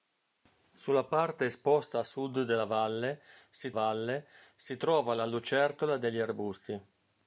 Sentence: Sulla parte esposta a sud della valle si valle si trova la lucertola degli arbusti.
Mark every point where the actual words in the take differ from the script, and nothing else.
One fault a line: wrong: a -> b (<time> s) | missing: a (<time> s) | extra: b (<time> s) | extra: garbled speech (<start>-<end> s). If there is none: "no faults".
no faults